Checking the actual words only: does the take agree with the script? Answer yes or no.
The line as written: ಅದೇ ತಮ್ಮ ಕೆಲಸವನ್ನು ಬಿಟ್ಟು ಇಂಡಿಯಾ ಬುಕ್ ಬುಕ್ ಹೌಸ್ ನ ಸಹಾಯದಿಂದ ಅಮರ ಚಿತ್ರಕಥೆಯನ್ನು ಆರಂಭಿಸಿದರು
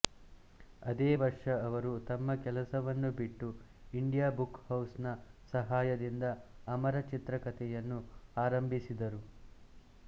no